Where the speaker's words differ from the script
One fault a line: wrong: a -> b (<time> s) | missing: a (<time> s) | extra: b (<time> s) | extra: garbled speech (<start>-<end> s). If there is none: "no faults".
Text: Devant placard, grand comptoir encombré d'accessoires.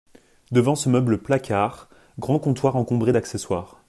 extra: ce meuble (0.7 s)